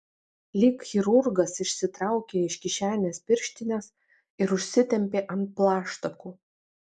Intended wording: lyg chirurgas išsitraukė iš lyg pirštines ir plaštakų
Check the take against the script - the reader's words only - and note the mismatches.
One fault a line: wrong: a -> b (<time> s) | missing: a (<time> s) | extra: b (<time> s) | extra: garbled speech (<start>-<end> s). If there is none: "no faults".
wrong: lyg -> kišenės (2.7 s)
extra: užsitempė ant (4.6 s)